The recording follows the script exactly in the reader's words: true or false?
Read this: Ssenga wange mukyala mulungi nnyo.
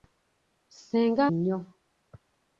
false